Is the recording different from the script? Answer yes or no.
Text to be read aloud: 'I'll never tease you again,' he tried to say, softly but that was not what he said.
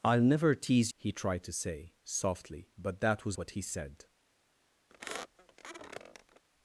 yes